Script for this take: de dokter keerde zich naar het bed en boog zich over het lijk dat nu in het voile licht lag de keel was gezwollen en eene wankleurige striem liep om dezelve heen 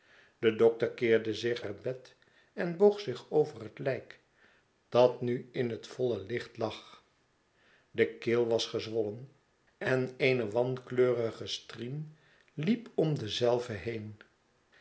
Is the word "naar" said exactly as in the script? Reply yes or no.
no